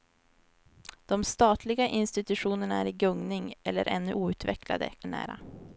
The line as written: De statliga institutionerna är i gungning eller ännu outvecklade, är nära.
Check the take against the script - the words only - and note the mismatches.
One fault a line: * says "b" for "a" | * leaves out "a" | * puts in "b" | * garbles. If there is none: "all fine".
all fine